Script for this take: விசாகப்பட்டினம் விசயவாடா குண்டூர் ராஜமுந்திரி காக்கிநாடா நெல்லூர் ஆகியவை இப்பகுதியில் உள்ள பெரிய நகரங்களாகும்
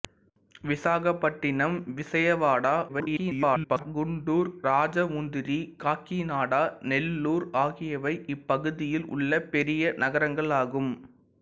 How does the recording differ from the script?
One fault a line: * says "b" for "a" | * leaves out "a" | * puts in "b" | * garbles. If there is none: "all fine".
* garbles